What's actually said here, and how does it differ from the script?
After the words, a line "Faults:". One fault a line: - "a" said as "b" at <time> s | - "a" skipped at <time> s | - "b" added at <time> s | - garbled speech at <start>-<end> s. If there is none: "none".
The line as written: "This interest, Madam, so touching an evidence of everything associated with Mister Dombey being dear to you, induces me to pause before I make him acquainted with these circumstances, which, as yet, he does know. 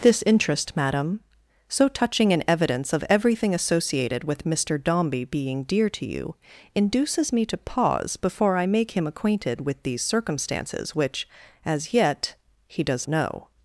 "This interest, Madam, so touching an evidence of everything associated with Mister Dombey being dear to you, induces me to pause before I make him acquainted with these circumstances, which, as yet, he does know.
Faults:
none